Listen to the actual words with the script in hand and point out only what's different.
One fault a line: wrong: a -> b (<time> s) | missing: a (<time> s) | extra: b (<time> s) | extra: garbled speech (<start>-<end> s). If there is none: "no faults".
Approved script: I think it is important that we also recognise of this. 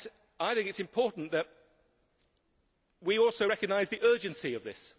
extra: the urgency (3.9 s)